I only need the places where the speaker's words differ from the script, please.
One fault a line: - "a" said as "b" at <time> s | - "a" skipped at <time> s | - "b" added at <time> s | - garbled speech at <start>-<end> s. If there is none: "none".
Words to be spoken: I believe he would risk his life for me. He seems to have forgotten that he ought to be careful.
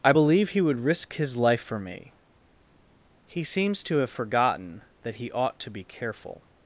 none